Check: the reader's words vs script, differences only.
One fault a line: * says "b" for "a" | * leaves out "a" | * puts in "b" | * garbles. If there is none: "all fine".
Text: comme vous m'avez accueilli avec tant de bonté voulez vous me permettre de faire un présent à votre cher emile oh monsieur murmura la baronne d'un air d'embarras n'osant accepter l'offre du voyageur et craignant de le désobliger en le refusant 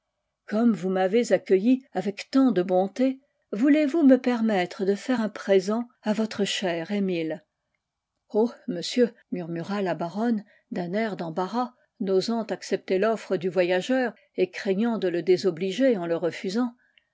all fine